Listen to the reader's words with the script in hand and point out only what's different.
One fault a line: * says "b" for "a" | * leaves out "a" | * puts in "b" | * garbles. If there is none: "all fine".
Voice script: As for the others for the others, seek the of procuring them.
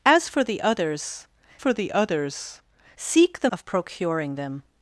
all fine